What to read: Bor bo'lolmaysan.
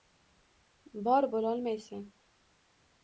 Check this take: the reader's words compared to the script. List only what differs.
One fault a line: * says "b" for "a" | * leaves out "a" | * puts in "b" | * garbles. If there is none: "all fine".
all fine